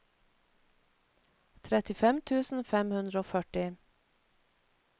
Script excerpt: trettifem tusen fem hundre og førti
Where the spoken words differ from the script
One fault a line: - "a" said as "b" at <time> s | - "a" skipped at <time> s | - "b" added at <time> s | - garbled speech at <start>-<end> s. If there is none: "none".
none